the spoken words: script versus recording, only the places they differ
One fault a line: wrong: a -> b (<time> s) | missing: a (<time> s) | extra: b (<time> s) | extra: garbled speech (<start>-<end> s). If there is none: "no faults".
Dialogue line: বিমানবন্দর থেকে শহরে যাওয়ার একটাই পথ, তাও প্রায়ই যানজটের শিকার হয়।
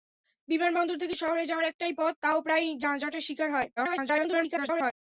extra: garbled speech (3.8-4.9 s)